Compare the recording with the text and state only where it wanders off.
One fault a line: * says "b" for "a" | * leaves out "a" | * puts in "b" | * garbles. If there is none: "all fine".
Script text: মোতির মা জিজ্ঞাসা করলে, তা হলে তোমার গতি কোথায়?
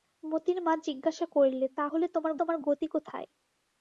* puts in "তোমার"